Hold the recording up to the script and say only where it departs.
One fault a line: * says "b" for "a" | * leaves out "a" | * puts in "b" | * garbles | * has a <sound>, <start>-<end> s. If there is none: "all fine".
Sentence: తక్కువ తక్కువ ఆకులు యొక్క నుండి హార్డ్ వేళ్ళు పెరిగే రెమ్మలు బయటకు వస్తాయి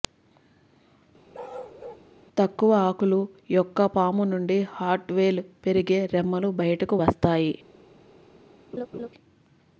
* has a bark, 1.3-2.1 s
* leaves out "తక్కువ"
* puts in "పాము"
* has a laugh, 8.7-9.1 s